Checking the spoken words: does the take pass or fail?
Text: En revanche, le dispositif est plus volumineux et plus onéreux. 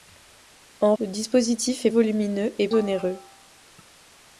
fail